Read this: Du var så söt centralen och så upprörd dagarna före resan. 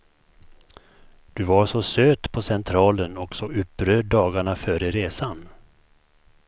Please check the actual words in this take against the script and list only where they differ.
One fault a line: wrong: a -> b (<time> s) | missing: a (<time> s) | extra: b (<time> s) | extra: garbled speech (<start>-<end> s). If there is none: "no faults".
extra: på (2.3 s)